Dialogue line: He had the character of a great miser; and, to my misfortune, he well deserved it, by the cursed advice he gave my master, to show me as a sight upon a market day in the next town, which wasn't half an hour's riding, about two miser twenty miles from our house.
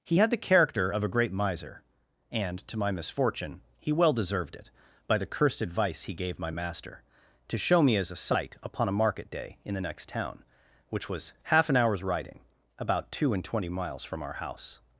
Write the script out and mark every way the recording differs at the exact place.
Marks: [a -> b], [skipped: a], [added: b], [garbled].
He had the character of a great miser; and, to my misfortune, he well deserved it, by the cursed advice he gave my master, to show me as a sight upon a market day in the next town, which [wasn't -> was] half an hour's riding, about two [miser -> and] twenty miles from our house.